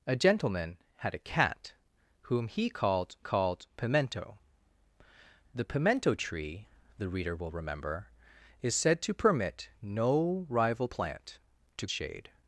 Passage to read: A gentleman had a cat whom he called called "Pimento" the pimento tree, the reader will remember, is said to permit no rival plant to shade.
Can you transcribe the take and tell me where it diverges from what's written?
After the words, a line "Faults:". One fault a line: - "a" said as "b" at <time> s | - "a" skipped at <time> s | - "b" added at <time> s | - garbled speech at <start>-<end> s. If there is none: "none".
A gentleman had a cat whom he called called "Pimento" the pimento tree, the reader will remember, is said to permit no rival plant to shade.
Faults:
none